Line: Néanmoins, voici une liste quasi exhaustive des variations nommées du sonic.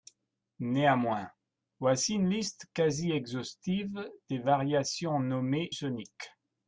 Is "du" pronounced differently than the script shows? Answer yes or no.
yes